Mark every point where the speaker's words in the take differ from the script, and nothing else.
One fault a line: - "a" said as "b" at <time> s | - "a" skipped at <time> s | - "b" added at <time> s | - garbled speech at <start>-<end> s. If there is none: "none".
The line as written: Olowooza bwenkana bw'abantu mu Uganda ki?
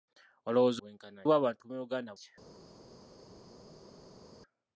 none